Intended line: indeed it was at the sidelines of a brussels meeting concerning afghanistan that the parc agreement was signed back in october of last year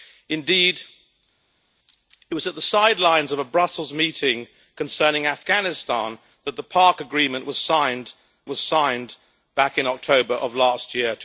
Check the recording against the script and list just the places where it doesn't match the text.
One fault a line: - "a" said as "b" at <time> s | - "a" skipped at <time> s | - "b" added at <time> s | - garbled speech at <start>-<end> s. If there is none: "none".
- "was signed" added at 8.5 s